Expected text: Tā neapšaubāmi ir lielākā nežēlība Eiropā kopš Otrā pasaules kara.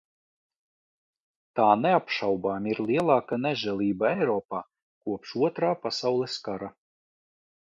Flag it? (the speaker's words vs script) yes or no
no